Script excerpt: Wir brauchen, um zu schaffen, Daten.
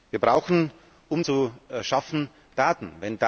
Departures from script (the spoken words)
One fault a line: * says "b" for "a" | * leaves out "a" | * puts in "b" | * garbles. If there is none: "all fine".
all fine